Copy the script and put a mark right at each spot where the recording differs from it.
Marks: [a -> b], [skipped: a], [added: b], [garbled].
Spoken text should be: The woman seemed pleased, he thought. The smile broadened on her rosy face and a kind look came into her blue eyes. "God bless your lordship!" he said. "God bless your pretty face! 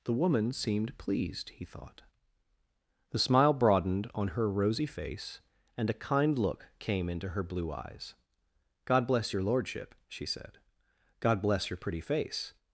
The woman seemed pleased, he thought. The smile broadened on her rosy face and a kind look came into her blue eyes. "God bless your lordship!" [he -> she] said. "God bless your pretty face!